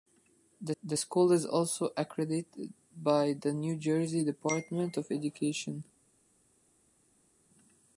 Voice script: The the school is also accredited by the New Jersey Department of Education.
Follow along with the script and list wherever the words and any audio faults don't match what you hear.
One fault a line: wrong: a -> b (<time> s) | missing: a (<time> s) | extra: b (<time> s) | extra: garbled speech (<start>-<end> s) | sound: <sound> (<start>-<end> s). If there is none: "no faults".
no faults